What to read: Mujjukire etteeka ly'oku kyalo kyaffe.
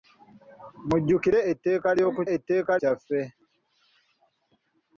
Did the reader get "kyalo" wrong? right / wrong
wrong